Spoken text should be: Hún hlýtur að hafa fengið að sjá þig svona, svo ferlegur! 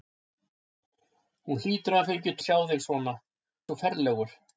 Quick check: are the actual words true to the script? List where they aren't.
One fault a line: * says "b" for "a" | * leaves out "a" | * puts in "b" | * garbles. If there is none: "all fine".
all fine